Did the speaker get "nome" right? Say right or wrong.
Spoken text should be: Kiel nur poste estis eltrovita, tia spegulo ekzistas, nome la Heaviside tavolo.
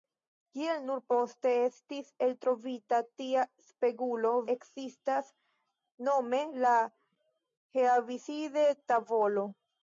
right